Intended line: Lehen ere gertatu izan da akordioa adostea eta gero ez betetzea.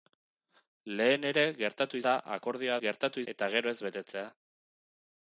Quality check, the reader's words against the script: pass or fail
fail